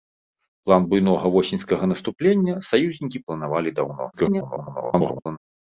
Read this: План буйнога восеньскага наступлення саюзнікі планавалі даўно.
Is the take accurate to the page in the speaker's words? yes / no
no